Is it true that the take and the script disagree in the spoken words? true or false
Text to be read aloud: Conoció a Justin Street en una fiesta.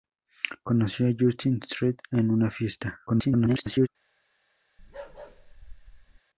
true